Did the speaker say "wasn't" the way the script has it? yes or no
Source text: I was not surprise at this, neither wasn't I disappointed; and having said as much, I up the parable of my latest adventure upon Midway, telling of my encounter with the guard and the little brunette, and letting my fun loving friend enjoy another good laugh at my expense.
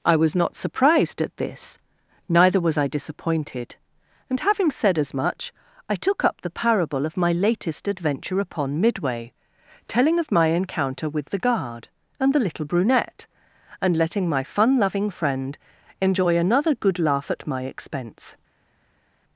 no